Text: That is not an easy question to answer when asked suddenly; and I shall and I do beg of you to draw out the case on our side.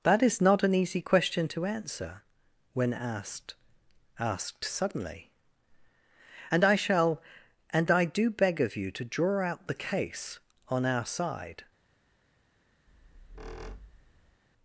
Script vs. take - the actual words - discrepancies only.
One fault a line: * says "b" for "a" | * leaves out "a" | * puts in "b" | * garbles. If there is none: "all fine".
* puts in "asked"